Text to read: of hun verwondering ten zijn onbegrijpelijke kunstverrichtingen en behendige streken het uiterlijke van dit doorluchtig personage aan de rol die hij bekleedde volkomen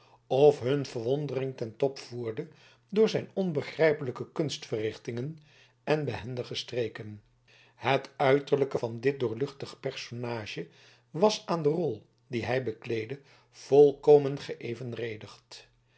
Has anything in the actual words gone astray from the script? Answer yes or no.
yes